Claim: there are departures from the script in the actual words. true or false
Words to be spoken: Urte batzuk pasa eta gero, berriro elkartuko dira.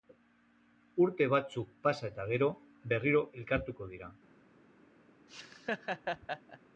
false